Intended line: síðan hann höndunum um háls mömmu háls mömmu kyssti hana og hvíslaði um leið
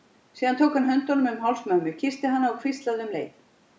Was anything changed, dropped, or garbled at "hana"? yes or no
no